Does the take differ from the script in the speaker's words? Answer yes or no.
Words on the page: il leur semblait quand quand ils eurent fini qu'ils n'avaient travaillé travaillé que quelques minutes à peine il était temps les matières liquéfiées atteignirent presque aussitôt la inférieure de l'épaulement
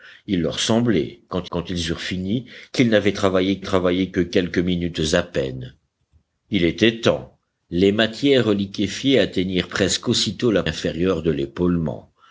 no